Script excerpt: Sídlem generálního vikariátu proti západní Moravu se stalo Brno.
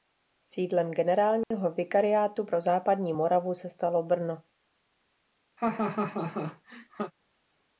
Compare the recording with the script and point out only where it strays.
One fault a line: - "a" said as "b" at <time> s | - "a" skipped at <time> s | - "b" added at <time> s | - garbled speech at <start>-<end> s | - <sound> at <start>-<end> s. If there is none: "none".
- dropout at 1.4-1.5 s
- "proti" said as "pro" at 2.4 s
- laugh at 5.6-7.1 s